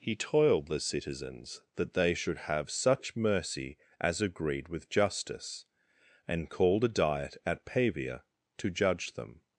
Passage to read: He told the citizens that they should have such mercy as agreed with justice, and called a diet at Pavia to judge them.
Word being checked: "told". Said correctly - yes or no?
no